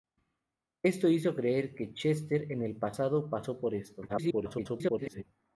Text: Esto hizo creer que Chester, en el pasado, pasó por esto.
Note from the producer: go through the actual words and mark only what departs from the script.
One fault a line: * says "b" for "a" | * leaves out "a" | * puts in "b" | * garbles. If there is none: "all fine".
* garbles